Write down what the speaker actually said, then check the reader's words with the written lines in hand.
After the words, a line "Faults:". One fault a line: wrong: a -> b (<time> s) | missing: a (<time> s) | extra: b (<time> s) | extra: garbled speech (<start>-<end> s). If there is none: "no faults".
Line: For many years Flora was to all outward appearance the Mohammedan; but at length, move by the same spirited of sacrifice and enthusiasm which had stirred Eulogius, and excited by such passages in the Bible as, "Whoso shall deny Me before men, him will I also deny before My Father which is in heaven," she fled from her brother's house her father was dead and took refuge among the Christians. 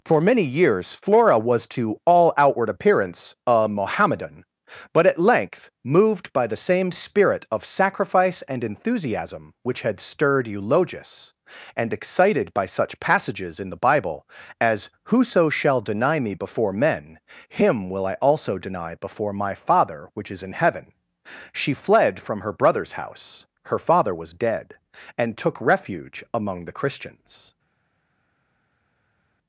For many years Flora was to all outward appearance a Mohammedan; but at length, moved by the same spirit of sacrifice and enthusiasm which had stirred Eulogius, and excited by such passages in the Bible as, "Whoso shall deny Me before men, him will I also deny before My Father which is in heaven," she fled from her brother's house her father was dead and took refuge among the Christians.
Faults:
wrong: the -> a (3.5 s)
wrong: move -> moved (5.8 s)
wrong: spirited -> spirit (6.9 s)